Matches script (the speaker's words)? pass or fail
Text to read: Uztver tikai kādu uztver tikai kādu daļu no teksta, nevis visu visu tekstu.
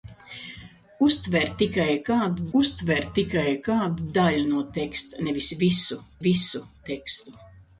pass